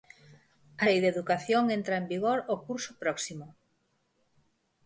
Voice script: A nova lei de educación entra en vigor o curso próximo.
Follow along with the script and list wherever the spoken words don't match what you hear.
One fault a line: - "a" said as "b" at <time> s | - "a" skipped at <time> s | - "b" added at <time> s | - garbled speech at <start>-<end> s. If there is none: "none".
- "nova" skipped at 0.8 s